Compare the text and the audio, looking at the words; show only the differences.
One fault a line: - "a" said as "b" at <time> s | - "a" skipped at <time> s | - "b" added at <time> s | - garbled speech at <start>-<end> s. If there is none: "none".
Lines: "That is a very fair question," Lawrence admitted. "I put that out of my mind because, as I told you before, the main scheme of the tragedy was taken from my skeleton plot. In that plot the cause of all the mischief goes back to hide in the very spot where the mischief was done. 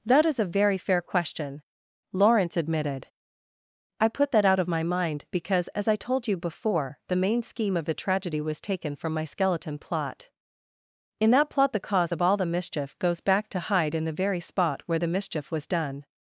none